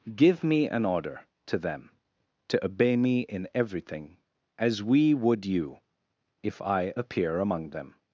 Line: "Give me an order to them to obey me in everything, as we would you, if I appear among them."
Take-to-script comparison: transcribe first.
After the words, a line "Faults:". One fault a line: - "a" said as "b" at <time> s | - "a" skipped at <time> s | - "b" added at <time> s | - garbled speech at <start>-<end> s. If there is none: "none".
"Give me an order to them to obey me in everything, as we would you, if I appear among them."
Faults:
none